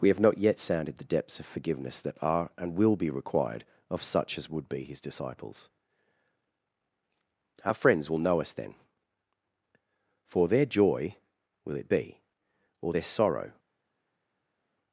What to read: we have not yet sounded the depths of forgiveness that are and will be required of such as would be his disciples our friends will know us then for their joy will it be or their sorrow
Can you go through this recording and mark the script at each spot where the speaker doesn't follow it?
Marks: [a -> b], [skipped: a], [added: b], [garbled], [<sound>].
we have not yet sounded the depths of forgiveness that are and will be required of such as would be his disciples our friends will know us then for their joy will it be or their sorrow